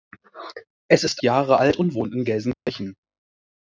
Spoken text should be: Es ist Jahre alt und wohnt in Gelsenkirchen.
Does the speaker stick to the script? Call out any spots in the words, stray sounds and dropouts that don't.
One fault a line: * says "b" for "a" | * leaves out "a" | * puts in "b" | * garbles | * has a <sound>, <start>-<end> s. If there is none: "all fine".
* has a dropout, 2.5-2.7 s